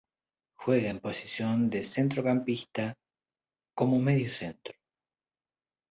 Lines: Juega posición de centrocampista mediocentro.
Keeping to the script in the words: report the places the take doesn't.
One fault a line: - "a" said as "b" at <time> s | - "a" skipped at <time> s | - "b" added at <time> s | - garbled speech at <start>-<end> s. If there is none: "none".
- "en" added at 0.9 s
- "como" added at 3.8 s